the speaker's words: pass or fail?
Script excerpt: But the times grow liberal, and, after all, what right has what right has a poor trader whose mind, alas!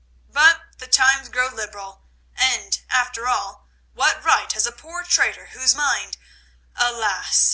fail